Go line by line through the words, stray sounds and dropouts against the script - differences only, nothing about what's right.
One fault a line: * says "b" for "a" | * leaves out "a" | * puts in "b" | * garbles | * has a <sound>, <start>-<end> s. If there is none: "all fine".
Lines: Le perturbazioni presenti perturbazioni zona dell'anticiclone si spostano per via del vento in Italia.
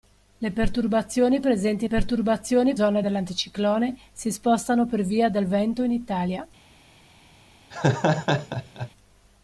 * has a laugh, 7.7-8.9 s